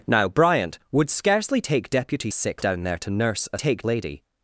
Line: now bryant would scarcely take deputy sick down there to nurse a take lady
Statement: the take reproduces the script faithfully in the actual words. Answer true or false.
true